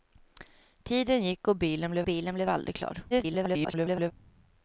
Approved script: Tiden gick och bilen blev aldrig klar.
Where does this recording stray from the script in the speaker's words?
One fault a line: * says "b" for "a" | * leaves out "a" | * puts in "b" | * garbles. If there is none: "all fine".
* puts in "bilen blev"
* garbles